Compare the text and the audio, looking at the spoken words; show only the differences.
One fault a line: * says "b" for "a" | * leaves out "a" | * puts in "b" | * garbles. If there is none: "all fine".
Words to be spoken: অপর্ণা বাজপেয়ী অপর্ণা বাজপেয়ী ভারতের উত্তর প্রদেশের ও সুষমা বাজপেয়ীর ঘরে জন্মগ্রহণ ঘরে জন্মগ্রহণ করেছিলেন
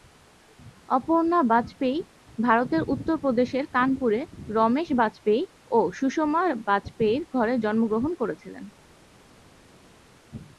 * leaves out "অপর্ণা বাজপেয়ী"
* puts in "কানপুরে রমেশ বাজপেয়ী"
* leaves out "ঘরে জন্মগ্রহণ"